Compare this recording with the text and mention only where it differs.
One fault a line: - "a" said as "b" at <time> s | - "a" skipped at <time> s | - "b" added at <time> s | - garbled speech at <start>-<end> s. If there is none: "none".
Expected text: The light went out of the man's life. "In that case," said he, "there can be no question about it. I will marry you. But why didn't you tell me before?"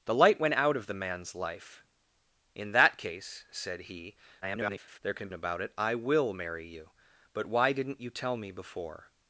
- garbled speech at 4.4-5.0 s
- "be no question" skipped at 5.3 s